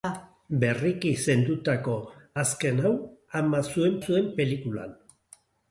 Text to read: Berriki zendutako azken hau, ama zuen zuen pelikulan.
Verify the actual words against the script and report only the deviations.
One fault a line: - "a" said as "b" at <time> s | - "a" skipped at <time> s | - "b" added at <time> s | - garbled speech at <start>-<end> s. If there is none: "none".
none